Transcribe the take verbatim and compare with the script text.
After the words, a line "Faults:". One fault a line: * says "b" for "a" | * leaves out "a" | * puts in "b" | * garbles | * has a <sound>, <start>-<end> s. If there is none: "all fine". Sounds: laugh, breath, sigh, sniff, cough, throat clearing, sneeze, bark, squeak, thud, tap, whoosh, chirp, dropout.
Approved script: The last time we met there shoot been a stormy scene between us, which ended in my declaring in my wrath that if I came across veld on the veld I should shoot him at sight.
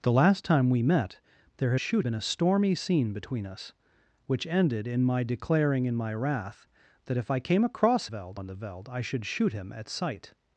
The last time we met there shoot been a stormy scene between us, which ended in my declaring in my wrath that if I came across veld on the veld I should shoot him at sight.
Faults:
all fine